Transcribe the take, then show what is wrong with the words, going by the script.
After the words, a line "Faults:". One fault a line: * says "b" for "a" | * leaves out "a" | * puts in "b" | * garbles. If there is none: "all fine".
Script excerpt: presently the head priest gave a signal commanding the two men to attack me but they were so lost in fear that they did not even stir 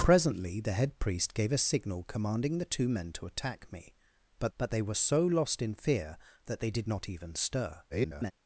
presently the head priest gave a signal commanding the two men to attack me but but they were so lost in fear that they did not even stir [garbled]
Faults:
* puts in "but"
* garbles